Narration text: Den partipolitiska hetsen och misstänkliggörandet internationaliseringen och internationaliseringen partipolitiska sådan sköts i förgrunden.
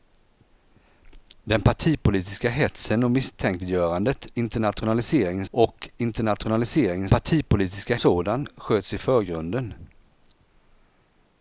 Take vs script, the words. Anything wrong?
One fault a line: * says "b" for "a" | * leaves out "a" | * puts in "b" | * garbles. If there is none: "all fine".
all fine